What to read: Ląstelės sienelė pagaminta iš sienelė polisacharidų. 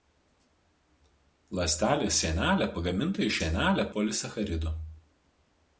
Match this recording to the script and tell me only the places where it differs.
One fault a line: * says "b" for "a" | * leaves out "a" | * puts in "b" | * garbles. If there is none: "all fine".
all fine